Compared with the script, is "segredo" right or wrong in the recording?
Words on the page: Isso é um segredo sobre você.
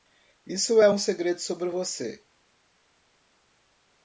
right